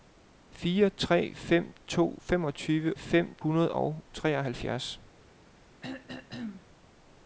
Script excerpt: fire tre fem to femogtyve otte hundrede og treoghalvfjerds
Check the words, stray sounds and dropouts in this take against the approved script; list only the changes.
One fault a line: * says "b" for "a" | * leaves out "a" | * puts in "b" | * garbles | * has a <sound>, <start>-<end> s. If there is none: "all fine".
* says "fem" for "otte"
* has a throat clearing, 5.8-6.7 s